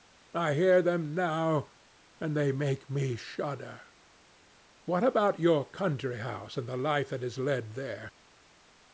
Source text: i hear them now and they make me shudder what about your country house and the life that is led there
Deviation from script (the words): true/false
false